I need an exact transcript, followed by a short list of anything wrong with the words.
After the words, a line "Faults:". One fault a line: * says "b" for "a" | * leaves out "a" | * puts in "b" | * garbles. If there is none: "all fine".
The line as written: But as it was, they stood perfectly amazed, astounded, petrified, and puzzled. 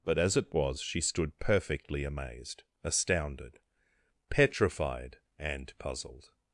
But as it was, she stood perfectly amazed, astounded, petrified, and puzzled.
Faults:
* says "she" for "they"